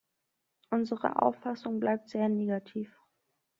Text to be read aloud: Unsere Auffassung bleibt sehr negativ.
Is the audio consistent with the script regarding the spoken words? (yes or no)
yes